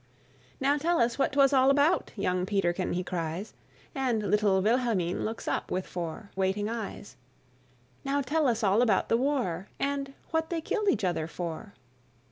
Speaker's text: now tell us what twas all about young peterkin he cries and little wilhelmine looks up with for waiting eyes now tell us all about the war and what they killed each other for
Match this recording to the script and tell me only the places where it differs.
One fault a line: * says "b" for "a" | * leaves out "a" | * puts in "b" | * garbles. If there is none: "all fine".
all fine